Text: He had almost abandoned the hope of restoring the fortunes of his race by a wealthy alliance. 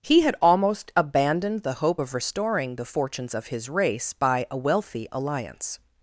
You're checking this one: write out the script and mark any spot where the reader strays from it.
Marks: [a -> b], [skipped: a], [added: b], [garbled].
He had almost abandoned the hope of restoring the fortunes of his race by a wealthy alliance.